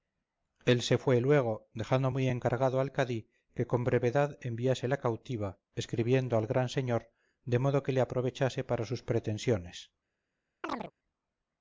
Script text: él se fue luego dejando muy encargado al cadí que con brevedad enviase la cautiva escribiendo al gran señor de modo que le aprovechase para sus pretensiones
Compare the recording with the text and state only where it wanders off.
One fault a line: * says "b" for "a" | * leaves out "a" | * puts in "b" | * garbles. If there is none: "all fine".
all fine